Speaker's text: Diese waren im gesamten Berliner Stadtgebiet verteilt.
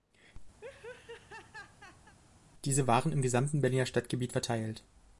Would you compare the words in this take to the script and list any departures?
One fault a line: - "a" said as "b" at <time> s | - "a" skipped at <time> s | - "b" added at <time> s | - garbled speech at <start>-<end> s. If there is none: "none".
none